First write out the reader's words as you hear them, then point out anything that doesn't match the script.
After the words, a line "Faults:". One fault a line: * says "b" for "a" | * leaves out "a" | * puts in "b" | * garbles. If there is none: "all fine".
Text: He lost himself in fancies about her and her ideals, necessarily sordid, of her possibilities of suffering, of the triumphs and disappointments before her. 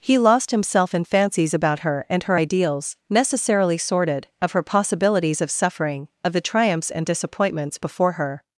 He lost himself in fancies about her and her ideals, necessarily sordid, of her possibilities of suffering, of the triumphs and disappointments before her.
Faults:
all fine